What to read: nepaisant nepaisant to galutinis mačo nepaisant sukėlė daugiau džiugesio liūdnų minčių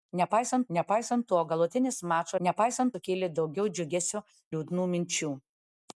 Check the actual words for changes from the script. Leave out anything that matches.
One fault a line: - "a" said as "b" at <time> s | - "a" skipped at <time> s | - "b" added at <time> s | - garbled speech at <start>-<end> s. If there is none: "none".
none